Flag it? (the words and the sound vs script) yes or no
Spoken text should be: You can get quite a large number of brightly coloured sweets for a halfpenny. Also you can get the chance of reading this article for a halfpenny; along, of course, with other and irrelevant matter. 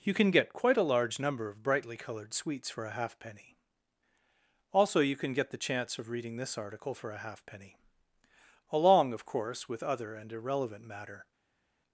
no